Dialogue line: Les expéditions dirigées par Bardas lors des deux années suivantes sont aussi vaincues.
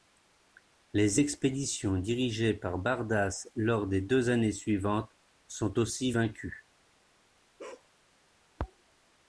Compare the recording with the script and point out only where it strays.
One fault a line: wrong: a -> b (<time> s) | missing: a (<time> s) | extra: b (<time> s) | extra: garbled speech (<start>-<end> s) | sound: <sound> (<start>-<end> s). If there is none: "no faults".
sound: bark (7.6-7.9 s)